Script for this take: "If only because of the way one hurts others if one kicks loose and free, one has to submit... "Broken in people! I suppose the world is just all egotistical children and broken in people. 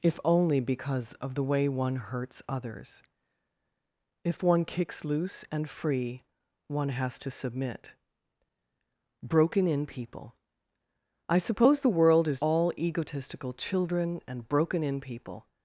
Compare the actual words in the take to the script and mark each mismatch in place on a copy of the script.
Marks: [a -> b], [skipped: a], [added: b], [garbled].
"If only because of the way one hurts others if one kicks loose and free, one has to submit... "Broken in people! I suppose the world is [skipped: just] all egotistical children and broken in people.